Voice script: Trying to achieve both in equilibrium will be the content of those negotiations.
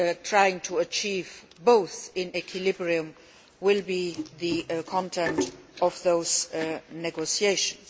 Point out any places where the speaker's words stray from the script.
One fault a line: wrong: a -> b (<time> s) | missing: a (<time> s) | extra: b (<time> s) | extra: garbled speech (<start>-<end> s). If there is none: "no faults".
no faults